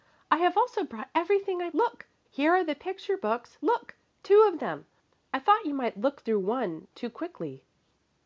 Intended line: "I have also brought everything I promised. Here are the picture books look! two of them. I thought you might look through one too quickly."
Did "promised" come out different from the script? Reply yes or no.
yes